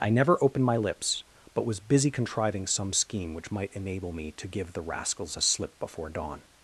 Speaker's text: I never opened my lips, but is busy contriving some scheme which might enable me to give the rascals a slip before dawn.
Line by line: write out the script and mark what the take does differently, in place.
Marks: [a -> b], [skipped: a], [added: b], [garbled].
I never opened my lips, but [is -> was] busy contriving some scheme which might enable me to give the rascals a slip before dawn.